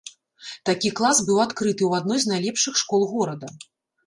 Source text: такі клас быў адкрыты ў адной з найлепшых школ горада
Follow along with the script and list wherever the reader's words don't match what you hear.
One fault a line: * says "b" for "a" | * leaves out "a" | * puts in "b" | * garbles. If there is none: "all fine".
all fine